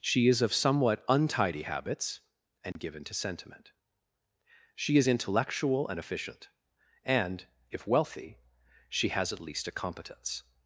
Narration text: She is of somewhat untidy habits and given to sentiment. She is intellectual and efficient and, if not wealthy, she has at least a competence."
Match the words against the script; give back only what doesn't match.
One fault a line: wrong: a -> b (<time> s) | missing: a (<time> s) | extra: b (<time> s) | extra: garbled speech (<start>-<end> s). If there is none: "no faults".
missing: not (7.9 s)